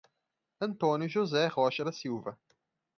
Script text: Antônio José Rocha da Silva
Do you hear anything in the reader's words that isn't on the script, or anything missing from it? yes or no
no